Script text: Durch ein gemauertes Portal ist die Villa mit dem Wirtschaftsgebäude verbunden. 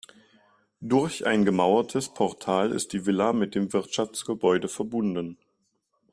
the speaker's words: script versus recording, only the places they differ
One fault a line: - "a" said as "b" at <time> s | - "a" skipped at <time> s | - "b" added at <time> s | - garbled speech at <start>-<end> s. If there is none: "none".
none